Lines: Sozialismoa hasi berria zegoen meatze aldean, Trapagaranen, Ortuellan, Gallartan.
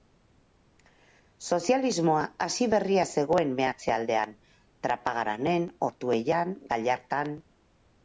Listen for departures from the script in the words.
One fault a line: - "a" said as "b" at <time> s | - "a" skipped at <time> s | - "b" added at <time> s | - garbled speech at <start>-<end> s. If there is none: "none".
none